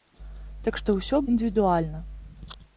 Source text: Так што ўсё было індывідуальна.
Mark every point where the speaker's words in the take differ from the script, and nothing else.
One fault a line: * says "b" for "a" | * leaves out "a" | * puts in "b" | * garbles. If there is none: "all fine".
* leaves out "было"